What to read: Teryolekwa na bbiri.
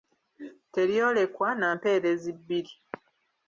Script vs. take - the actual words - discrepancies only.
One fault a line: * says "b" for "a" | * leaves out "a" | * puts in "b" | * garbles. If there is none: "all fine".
* puts in "mpeerezi"